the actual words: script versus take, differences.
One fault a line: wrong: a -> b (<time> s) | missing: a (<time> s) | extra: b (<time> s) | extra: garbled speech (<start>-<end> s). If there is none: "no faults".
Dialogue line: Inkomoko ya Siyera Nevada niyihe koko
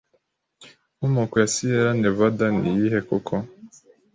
no faults